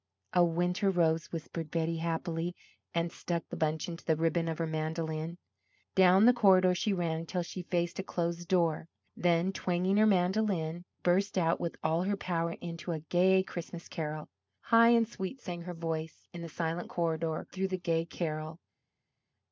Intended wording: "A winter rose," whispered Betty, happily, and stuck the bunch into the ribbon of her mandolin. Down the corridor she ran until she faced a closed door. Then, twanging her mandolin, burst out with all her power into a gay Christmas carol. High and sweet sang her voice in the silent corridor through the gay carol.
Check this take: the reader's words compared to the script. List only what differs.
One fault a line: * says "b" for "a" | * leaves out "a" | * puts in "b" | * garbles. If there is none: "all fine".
all fine